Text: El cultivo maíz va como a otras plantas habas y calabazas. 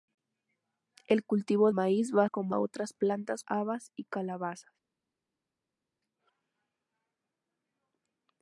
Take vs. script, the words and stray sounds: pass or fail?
pass